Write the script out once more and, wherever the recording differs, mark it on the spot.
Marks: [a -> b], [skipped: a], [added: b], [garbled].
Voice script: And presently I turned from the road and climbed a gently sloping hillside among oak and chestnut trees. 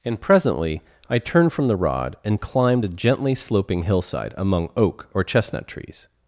And presently I turned from the [road -> rod] and climbed a gently sloping hillside among oak [and -> or] chestnut trees.